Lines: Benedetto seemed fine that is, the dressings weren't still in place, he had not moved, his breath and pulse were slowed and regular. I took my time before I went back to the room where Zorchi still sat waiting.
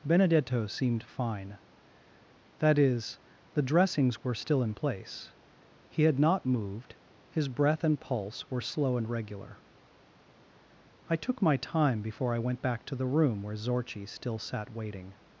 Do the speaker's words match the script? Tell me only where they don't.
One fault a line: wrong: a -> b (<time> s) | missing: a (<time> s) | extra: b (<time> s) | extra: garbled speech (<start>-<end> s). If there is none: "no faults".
wrong: weren't -> were (4.2 s)
wrong: slowed -> slow (8.6 s)